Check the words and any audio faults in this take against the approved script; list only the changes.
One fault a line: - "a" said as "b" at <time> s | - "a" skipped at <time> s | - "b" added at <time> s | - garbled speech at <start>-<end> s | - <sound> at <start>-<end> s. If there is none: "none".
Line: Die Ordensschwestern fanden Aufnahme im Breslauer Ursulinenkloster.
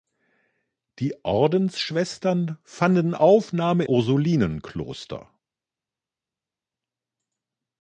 - "im Breslauer" skipped at 3.8 s